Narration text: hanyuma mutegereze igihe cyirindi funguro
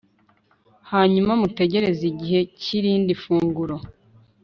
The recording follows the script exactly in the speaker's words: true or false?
true